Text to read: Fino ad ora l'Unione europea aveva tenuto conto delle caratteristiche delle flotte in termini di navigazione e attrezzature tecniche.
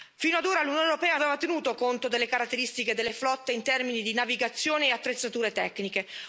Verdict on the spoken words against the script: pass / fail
pass